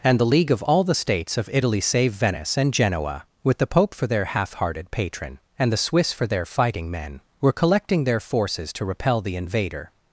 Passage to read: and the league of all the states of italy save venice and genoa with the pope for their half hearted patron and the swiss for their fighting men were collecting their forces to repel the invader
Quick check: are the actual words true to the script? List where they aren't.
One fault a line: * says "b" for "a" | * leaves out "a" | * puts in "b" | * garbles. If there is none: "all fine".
all fine